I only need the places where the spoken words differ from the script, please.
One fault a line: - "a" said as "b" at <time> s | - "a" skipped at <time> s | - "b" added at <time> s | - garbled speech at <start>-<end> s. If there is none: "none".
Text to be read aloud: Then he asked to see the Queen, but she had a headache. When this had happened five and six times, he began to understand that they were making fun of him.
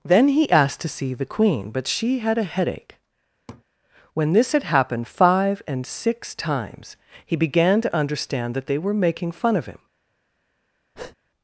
none